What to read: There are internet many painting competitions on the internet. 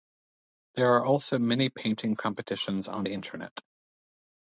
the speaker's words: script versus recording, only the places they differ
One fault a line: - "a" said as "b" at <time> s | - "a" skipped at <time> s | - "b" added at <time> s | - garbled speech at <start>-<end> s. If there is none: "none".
- "internet" said as "also" at 1.1 s